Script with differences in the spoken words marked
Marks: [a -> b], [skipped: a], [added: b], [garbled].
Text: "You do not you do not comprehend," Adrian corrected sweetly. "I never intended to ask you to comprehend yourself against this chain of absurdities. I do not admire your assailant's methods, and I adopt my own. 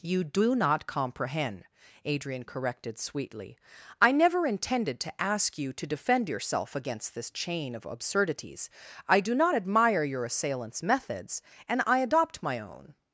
"You do not [skipped: you do not] comprehend," Adrian corrected sweetly. "I never intended to ask you to [comprehend -> defend] yourself against this chain of absurdities. I do not admire your assailant's methods, and I adopt my own.